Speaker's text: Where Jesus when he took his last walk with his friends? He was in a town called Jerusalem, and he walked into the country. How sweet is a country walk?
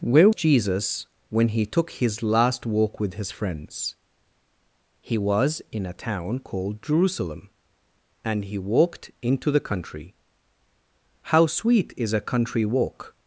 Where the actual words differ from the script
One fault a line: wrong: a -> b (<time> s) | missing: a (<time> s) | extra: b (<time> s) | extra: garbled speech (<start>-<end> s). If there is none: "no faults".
no faults